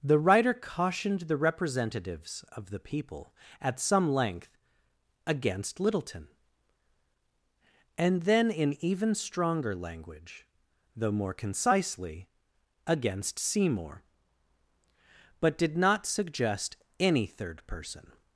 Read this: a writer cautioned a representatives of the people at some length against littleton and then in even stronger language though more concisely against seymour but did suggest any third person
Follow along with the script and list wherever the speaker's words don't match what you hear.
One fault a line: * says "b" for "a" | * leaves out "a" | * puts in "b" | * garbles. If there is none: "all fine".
* says "the" for "a"
* says "the" for "a"
* puts in "not"